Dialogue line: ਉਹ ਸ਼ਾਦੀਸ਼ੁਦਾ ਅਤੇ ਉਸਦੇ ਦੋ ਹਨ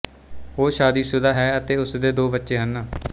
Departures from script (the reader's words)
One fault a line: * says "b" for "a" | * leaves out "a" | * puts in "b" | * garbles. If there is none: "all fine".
* puts in "ਹੈ"
* puts in "ਬੱਚੇ"